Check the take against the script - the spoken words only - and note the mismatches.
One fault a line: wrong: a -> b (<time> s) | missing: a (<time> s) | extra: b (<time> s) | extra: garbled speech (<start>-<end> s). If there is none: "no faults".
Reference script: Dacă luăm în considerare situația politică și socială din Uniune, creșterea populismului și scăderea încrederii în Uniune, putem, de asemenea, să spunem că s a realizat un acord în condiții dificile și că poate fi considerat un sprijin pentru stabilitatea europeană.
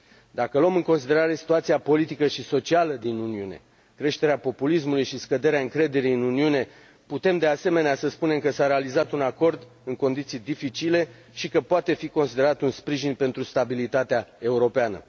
no faults